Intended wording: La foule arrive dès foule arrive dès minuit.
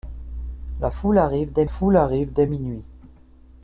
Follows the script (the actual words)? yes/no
yes